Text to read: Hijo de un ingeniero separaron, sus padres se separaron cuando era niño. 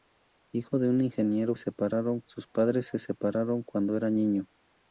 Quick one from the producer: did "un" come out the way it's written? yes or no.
yes